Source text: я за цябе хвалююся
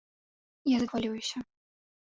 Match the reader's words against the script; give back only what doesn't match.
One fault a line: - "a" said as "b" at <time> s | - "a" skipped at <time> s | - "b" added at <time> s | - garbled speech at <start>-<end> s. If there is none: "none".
- "цябе" skipped at 0.9 s